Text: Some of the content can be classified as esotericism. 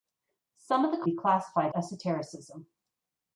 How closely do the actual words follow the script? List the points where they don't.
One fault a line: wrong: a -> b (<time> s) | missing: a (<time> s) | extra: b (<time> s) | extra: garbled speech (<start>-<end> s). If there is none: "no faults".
missing: content can (1.1 s)
missing: as (1.7 s)